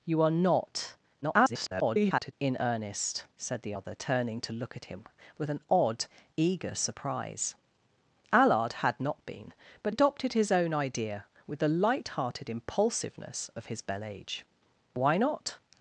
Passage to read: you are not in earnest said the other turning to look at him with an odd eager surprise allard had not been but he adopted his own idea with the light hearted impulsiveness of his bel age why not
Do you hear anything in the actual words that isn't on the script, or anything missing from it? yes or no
yes